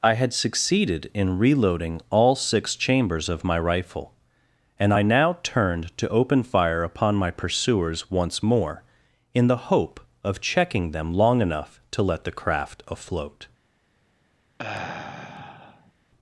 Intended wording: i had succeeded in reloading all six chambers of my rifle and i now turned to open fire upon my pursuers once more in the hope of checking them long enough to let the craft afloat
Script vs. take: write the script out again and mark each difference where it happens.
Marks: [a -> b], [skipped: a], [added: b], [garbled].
i had succeeded in reloading all six chambers of my rifle and i now turned to open fire upon my pursuers once more in the hope of checking them long enough to let the craft afloat